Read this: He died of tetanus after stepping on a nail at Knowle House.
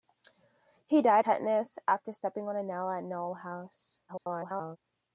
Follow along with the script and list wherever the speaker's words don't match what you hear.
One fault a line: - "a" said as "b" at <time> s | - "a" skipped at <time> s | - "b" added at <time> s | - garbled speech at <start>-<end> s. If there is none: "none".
- "of" skipped at 1.2 s
- garbled speech at 4.1-4.8 s